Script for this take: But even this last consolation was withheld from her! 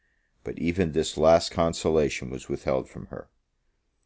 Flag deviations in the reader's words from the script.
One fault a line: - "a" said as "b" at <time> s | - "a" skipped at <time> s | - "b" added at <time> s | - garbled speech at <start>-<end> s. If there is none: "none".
none